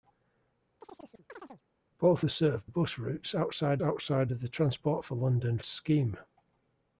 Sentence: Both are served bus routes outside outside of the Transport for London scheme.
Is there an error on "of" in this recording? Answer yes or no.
no